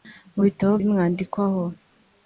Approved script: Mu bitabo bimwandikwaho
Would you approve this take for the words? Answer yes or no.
yes